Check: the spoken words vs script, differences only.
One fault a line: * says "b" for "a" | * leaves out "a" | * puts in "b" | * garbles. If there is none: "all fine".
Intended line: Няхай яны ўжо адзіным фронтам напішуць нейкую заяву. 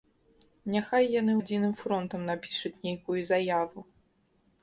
* leaves out "ўжо"